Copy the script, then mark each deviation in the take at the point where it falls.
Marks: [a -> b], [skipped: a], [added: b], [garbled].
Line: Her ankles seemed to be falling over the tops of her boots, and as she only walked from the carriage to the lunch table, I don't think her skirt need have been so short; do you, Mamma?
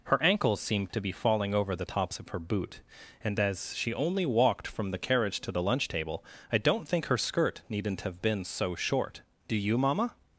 Her ankles seemed to be falling over the tops of her [boots, -> boot] and as she only walked from the carriage to the lunch table, I don't think her skirt [need -> needn't] have been so short; do you, Mamma?